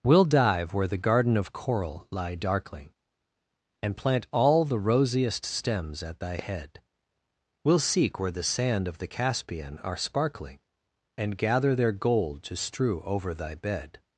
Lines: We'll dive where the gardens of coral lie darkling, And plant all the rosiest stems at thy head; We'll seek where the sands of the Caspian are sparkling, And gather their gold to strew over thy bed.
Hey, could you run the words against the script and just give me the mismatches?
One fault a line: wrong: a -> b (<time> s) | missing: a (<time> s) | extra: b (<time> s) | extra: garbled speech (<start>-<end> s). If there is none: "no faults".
wrong: gardens -> garden (1.0 s)
wrong: sands -> sand (8.4 s)